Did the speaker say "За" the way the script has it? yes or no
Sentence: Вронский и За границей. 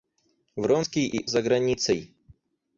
yes